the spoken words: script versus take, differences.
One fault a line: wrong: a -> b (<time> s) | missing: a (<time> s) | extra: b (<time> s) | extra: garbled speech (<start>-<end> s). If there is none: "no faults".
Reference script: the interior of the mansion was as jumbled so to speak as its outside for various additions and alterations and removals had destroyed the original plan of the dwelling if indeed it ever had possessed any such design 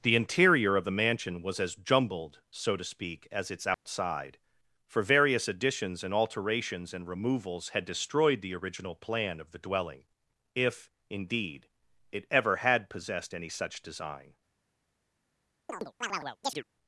no faults